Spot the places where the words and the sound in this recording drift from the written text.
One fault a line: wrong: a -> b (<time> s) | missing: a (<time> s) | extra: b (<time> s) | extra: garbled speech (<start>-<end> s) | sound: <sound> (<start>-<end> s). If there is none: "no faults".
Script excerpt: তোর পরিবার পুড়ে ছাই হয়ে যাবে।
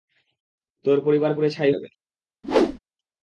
missing: হয়ে (1.7 s)
sound: whoosh (2.4-2.8 s)